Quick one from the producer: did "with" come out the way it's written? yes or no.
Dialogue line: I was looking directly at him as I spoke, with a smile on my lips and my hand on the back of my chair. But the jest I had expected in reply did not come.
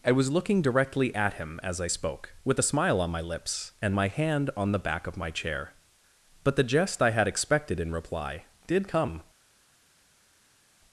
yes